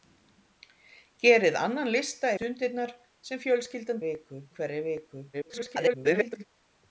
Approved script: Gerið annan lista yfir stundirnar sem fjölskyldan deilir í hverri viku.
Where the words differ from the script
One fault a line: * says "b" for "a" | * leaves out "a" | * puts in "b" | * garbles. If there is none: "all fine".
* leaves out "yfir"
* says "viku" for "deilir"
* garbles